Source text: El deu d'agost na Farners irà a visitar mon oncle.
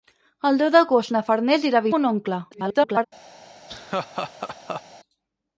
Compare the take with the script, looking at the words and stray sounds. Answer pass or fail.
fail